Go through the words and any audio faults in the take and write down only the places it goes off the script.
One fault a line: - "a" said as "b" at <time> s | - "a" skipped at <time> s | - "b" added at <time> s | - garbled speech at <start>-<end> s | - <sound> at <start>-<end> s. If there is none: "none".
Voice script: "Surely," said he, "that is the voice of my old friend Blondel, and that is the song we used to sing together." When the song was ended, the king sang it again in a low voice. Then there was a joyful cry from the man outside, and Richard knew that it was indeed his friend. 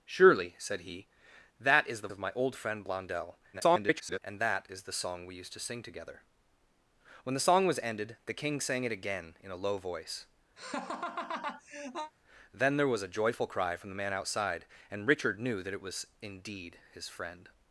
- "voice" skipped at 2.1 s
- garbled speech at 3.5-4.2 s
- laugh at 10.6-12.1 s